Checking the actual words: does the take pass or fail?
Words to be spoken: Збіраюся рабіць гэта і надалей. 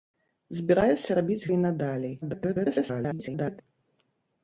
fail